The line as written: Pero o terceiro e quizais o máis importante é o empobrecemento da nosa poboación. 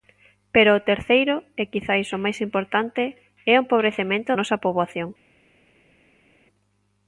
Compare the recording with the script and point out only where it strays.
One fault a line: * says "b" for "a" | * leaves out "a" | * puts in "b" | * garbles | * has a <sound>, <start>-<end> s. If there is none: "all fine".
* leaves out "da"